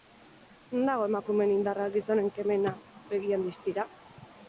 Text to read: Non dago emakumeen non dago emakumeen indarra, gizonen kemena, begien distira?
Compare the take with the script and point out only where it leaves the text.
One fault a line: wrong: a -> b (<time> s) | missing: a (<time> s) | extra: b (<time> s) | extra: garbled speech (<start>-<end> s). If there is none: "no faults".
missing: non dago emakumeen (1.5 s)